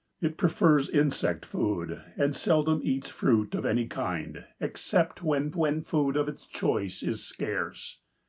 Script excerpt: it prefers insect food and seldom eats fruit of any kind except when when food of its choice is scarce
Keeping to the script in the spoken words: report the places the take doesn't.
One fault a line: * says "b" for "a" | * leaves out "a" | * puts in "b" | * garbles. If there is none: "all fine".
all fine